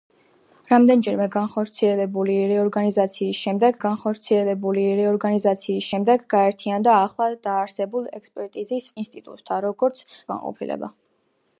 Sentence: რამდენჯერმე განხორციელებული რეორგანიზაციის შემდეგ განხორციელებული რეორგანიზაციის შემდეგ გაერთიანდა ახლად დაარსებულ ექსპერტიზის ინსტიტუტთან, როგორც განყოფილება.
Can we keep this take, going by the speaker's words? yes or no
yes